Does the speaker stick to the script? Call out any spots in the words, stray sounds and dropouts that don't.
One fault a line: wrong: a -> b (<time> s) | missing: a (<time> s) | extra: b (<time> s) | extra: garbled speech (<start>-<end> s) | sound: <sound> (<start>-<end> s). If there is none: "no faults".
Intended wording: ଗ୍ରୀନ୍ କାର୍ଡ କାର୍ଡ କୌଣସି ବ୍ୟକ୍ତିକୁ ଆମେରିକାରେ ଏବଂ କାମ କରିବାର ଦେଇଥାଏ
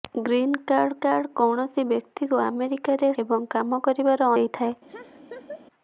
sound: laugh (4.9-5.7 s)